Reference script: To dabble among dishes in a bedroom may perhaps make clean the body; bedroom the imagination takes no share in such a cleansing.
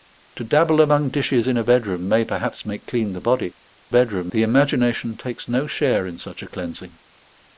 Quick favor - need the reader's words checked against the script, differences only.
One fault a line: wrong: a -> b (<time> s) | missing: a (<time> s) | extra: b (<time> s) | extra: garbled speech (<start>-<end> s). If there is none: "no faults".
no faults